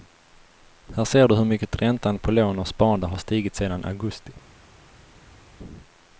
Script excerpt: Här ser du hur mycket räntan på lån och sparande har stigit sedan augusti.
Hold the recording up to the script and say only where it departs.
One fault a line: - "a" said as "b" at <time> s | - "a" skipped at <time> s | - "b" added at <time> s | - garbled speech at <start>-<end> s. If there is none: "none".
none